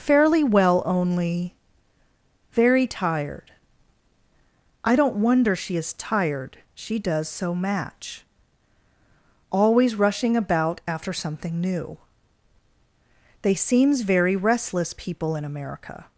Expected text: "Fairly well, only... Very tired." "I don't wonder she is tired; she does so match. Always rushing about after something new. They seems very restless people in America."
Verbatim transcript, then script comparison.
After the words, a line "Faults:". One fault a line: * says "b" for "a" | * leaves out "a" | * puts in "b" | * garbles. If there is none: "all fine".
"Fairly well, only... Very tired." "I don't wonder she is tired; she does so match. Always rushing about after something new. They seems very restless people in America."
Faults:
all fine